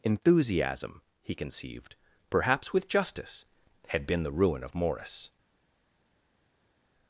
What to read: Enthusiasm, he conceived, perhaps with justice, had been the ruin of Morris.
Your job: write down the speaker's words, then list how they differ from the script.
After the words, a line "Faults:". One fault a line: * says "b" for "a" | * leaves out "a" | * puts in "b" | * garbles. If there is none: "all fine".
Enthusiasm, he conceived, perhaps with justice, had been the ruin of Morris.
Faults:
all fine